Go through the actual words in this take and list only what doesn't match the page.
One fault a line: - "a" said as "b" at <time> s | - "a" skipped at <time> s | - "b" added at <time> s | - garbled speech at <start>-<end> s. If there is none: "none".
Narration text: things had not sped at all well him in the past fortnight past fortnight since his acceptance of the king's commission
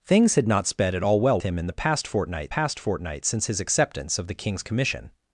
none